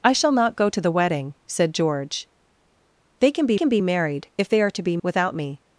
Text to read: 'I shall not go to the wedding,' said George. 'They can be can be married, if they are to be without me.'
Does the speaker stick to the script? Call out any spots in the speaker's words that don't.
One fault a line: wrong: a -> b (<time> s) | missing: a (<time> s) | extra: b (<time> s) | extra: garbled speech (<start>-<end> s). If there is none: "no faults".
no faults